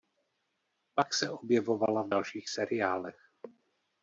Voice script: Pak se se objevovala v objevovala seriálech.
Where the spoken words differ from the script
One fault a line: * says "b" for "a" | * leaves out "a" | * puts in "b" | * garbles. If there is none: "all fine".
* leaves out "se"
* says "dalších" for "objevovala"